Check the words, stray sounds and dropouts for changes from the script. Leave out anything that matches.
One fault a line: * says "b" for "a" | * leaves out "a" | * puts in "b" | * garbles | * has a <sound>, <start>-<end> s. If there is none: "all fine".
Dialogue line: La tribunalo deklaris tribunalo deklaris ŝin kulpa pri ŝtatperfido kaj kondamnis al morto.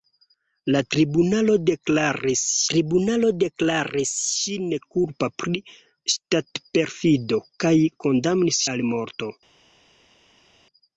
all fine